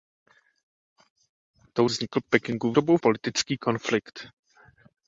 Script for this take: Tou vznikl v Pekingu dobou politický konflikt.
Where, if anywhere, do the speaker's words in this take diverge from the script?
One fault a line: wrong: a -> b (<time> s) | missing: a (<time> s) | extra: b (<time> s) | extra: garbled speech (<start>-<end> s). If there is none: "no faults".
no faults